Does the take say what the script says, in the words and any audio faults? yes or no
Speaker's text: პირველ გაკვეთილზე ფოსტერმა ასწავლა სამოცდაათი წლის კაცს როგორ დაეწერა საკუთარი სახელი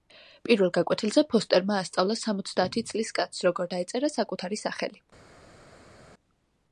yes